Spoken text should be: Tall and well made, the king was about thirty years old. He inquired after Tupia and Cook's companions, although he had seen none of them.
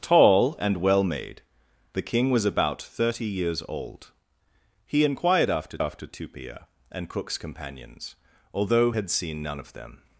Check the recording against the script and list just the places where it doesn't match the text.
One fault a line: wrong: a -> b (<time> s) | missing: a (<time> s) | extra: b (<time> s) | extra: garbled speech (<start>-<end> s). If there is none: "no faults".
extra: after (5.8 s)
missing: he (8.9 s)